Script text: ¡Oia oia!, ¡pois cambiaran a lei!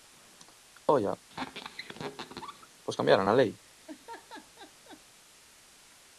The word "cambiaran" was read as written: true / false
true